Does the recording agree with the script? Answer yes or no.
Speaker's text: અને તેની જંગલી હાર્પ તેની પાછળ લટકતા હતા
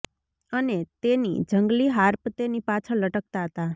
yes